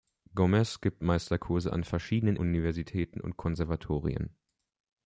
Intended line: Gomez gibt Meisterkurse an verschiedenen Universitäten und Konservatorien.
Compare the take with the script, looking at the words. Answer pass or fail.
pass